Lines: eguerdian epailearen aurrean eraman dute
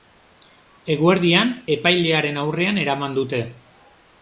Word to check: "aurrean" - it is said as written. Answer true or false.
true